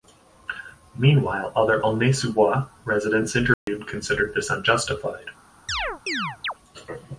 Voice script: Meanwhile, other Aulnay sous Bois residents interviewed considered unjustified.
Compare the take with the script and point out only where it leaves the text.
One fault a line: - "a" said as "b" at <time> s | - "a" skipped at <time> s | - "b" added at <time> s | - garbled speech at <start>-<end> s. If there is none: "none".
- "this" added at 4.3 s